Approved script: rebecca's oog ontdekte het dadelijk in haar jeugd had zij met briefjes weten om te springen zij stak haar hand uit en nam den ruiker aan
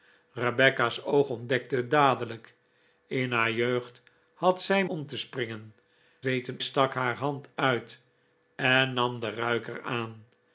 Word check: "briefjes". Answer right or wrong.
wrong